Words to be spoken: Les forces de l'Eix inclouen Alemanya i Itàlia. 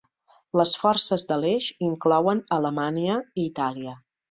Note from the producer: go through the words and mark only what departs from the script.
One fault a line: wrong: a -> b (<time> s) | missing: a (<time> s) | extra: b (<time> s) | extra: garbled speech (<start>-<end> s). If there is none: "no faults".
no faults